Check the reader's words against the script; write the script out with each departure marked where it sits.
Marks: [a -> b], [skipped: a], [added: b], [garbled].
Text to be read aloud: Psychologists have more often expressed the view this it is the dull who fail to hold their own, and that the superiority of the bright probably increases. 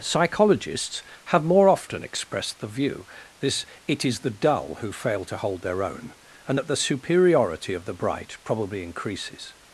Psychologists have more often expressed the view this it is the dull who fail to hold their own, and that the superiority of the bright probably increases.